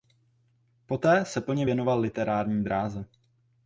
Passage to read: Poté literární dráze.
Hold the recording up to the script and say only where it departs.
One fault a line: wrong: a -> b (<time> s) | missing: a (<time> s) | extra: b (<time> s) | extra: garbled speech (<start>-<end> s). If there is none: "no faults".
extra: se plně věnoval (1.2 s)